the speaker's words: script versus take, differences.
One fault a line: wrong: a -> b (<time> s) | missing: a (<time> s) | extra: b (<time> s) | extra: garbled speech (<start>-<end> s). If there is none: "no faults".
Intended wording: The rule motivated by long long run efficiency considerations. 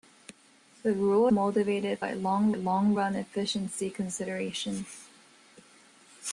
no faults